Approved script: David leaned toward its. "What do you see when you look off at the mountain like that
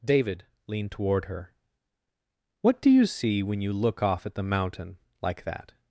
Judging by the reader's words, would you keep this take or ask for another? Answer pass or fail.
fail